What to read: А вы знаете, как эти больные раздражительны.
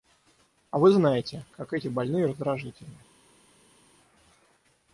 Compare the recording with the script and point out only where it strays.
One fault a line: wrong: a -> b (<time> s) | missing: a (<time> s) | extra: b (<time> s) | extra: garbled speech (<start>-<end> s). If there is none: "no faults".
no faults